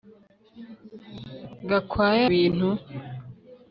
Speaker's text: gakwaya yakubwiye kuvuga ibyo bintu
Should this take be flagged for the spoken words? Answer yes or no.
yes